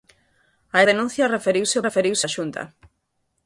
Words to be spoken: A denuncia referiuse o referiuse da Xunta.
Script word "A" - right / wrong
right